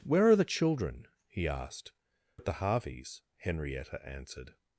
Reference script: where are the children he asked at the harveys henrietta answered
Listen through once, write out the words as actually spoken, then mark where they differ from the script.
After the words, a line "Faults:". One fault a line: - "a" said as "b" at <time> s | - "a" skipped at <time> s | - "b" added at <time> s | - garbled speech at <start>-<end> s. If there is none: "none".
where are the children he asked at the harveys henrietta answered
Faults:
none